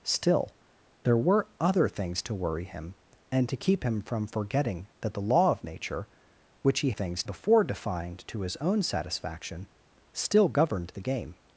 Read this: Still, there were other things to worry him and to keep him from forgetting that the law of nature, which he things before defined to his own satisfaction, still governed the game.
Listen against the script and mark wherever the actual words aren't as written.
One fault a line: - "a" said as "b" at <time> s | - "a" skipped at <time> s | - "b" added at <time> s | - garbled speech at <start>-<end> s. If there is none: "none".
none